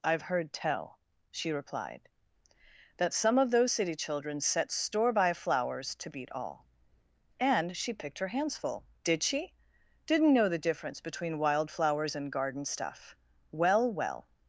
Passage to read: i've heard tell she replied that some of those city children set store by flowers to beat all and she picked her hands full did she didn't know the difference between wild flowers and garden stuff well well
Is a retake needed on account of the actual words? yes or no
no